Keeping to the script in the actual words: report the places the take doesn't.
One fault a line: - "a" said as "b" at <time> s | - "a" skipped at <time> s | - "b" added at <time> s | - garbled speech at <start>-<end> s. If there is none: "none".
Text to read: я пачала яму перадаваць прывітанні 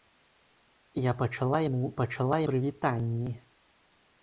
- "перадаваць" said as "пачала" at 2.0 s